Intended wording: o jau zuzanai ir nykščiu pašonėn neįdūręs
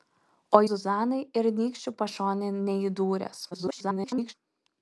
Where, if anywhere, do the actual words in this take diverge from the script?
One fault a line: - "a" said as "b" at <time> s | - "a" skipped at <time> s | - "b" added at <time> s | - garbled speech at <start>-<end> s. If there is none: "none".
- "jau" skipped at 0.6 s
- garbled speech at 3.5-4.3 s